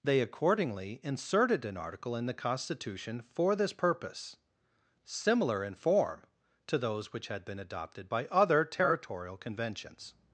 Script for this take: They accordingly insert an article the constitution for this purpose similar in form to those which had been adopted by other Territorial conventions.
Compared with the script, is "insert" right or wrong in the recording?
wrong